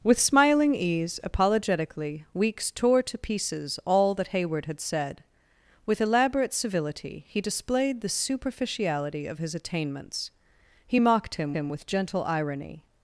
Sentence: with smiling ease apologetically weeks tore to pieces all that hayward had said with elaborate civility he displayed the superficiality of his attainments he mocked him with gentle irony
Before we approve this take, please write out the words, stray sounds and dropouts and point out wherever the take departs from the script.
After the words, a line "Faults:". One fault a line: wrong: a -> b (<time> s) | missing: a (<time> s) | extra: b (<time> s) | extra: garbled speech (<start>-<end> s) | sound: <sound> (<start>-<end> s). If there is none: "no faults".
with smiling ease apologetically weeks tore to pieces all that hayward had said with elaborate civility he displayed the superficiality of his attainments he mocked him him with gentle irony
Faults:
extra: him (11.5 s)